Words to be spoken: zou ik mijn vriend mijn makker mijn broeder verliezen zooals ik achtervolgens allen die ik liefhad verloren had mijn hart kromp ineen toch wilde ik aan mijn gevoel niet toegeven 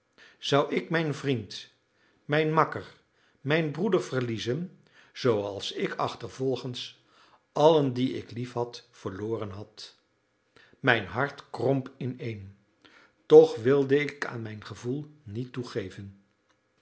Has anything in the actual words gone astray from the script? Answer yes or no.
no